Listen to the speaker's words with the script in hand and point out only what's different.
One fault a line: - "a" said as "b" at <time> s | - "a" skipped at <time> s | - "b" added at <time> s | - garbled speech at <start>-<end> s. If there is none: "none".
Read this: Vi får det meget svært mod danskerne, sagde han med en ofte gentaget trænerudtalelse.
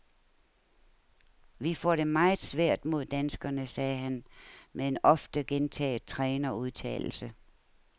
none